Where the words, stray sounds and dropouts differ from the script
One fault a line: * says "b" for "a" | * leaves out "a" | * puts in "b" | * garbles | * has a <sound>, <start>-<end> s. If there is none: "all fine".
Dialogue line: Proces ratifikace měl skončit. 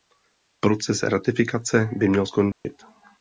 * puts in "by"
* has a dropout, 2.5-2.6 s